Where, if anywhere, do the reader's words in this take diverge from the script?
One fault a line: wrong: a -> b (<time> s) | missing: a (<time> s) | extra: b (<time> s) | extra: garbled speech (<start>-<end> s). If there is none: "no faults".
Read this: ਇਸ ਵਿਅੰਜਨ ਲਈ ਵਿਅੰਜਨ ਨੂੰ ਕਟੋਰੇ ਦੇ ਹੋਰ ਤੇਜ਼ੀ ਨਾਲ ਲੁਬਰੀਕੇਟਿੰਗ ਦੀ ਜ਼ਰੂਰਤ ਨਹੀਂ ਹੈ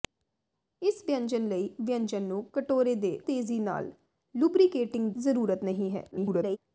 missing: ਹੋਰ (3.2 s)
missing: ਦੀ (5.1 s)
extra: garbled speech (6.1-6.6 s)